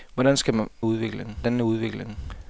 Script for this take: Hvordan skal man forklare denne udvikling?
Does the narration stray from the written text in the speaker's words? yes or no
yes